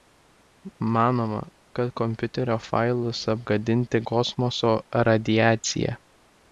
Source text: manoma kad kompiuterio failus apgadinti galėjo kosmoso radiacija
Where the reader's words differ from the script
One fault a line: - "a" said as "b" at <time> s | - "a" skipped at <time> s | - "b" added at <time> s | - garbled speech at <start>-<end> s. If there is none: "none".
- "galėjo" skipped at 4.0 s